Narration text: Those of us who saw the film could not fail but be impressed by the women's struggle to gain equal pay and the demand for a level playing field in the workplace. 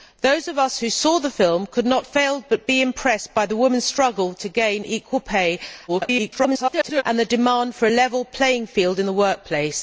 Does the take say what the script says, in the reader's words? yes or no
no